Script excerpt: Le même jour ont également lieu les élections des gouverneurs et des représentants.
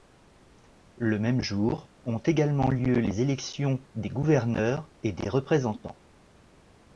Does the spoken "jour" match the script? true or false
true